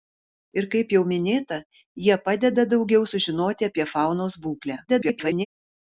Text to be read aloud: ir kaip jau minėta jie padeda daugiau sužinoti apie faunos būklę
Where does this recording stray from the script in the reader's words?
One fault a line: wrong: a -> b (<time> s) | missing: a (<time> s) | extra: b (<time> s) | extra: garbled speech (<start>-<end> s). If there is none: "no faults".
extra: garbled speech (4.9-5.5 s)